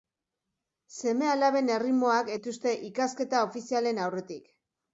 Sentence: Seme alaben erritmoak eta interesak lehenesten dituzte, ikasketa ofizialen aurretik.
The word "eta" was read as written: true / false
false